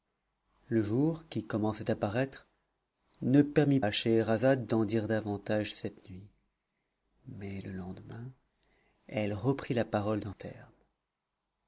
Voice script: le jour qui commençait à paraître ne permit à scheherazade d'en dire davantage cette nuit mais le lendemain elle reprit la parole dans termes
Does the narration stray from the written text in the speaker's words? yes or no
no